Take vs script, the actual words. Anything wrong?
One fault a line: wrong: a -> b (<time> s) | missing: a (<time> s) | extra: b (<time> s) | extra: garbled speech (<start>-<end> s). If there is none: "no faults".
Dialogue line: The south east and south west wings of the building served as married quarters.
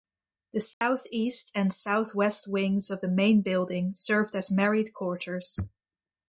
extra: main (3.1 s)